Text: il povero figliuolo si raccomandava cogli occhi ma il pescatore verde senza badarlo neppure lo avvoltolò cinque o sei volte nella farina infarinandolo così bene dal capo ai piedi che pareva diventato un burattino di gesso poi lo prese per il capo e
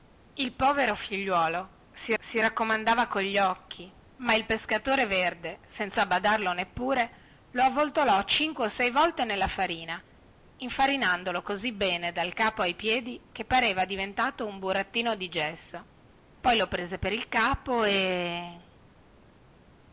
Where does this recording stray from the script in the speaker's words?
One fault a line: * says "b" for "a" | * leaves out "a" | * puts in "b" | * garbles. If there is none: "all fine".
* puts in "si"